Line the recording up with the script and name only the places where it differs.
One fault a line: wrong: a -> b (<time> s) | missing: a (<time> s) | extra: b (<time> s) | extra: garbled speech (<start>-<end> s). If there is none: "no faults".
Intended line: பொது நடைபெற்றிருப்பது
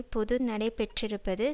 no faults